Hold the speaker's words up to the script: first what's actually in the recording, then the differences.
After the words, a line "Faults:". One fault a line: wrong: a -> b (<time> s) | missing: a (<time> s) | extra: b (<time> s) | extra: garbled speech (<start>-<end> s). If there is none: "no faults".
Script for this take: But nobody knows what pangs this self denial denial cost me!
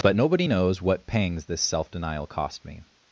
But nobody knows what pangs this self denial cost me!
Faults:
missing: denial (2.3 s)